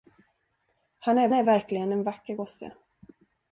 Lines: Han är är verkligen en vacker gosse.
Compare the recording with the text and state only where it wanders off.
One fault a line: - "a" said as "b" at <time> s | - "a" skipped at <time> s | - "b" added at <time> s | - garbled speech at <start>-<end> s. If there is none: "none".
none